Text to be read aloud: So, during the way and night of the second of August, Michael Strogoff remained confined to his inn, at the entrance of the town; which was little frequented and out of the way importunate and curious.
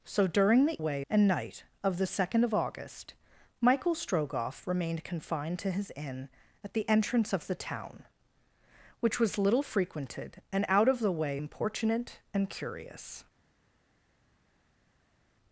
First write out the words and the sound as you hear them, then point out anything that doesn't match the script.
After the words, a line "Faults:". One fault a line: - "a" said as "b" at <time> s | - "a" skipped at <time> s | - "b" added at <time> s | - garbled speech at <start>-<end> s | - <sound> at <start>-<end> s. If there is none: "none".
So, during the way and night of the second of August, Michael Strogoff remained confined to his inn, at the entrance of the town; which was little frequented and out of the way importunate and curious.
Faults:
none